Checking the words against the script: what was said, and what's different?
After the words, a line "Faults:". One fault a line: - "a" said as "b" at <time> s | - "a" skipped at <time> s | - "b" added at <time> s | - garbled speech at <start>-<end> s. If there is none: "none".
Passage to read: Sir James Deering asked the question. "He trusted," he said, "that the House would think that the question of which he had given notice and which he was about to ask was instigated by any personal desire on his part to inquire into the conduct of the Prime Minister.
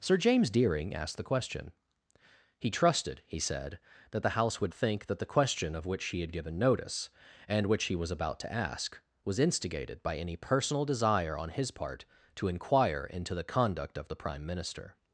Sir James Deering asked the question. "He trusted," he said, "that the House would think that the question of which he had given notice and which he was about to ask was instigated by any personal desire on his part to inquire into the conduct of the Prime Minister.
Faults:
none